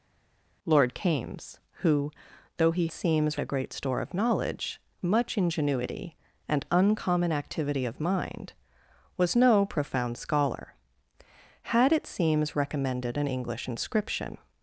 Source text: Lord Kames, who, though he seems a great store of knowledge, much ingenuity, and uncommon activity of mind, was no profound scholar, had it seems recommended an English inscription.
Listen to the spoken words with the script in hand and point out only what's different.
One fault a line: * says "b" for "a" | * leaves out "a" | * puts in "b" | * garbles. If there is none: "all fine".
all fine